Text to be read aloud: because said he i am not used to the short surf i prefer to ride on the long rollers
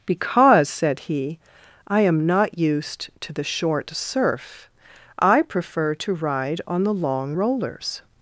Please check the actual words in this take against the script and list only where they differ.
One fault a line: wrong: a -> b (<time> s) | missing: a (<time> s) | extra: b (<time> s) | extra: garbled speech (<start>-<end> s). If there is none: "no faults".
no faults